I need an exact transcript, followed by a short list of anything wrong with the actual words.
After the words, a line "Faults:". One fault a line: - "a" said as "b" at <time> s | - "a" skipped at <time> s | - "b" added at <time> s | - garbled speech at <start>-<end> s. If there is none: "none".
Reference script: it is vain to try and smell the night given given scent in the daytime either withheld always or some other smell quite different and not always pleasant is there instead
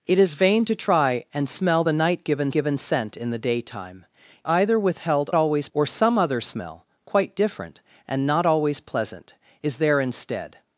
it is vain to try and smell the night given given scent in the daytime either withheld always or some other smell quite different and not always pleasant is there instead
Faults:
none